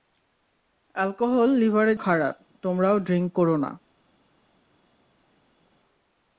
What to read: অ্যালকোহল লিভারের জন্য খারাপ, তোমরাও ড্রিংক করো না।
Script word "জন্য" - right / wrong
wrong